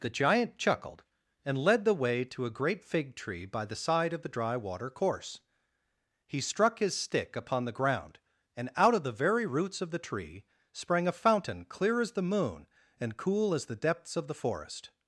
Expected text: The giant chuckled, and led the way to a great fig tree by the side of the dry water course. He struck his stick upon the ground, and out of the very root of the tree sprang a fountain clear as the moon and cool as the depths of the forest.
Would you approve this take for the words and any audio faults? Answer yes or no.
no